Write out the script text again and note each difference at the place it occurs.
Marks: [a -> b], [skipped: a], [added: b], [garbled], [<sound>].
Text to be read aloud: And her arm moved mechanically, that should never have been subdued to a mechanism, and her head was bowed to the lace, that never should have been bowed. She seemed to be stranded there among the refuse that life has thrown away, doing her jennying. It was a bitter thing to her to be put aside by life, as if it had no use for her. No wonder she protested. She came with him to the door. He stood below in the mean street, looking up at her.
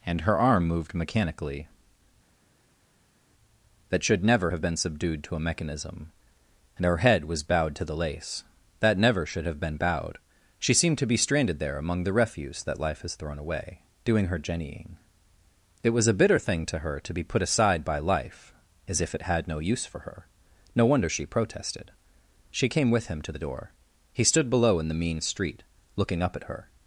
And her arm moved mechanically, that should never have been subdued to a mechanism, and her head was bowed to the lace, that never should have been bowed. She seemed to be stranded there among the refuse that life has thrown away, doing her jennying. It was a bitter thing to her to be put aside by life, as if it had no use for her. No wonder she protested. She came with him to the door. He stood below in the mean street, looking up at her.